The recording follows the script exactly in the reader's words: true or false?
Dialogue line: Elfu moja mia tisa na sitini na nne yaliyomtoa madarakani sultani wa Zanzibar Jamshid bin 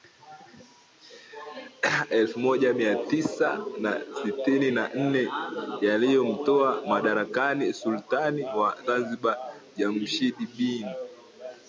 true